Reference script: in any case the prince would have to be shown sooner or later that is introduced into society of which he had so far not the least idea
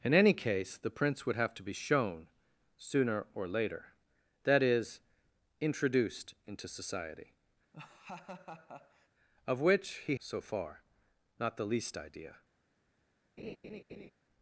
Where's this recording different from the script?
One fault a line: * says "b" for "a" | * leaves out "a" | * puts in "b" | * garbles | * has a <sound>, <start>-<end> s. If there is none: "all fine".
* has a laugh, 7.7-9.1 s
* leaves out "had"
* has a laugh, 13.4-14.1 s